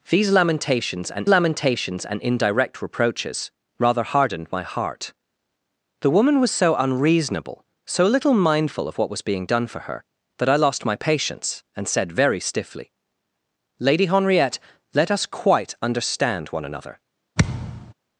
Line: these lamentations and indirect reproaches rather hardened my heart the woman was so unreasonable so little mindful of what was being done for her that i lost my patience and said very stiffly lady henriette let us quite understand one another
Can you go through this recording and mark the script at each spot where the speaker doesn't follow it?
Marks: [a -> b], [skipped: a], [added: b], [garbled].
these lamentations and [added: lamentations and] indirect reproaches rather hardened my heart the woman was so unreasonable so little mindful of what was being done for her that i lost my patience and said very stiffly lady henriette let us quite understand one another